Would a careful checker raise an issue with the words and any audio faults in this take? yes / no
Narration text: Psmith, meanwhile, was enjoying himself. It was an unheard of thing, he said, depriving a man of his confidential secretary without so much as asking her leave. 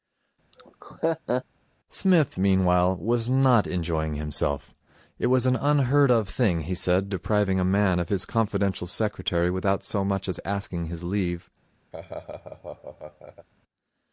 yes